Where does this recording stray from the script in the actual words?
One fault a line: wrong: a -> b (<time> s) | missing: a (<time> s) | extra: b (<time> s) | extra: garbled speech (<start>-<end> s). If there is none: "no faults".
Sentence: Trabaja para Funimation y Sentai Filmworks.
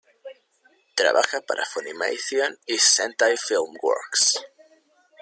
no faults